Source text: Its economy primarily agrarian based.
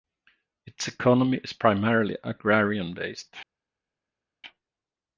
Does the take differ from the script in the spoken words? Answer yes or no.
yes